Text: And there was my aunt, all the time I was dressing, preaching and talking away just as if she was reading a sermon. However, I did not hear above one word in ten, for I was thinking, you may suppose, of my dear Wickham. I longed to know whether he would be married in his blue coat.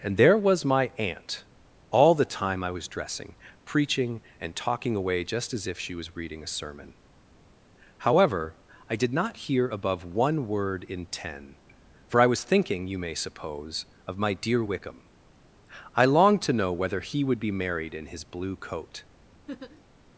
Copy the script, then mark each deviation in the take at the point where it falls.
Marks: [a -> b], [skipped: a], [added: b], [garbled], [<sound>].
And there was my aunt, all the time I was dressing, preaching and talking away just as if she was reading a sermon. However, I did not hear above one word in ten, for I was thinking, you may suppose, of my dear Wickham. I longed to know whether he would be married in his blue coat. [laugh]